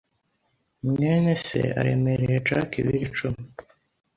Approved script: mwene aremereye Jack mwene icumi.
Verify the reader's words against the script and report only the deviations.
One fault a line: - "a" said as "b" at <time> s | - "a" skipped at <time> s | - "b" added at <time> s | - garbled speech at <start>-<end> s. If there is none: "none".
- "se" added at 1.4 s
- "mwene" said as "ibiro" at 2.8 s